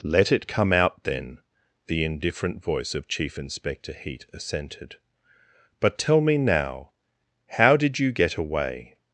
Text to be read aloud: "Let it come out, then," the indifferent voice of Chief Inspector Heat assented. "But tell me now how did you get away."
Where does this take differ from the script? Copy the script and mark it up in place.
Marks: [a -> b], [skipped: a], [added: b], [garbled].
"Let it come out, then," the indifferent voice of Chief Inspector Heat assented. "But tell me now how did you get away."